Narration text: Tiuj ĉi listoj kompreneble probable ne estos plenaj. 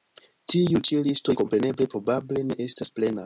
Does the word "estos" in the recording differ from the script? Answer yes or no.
yes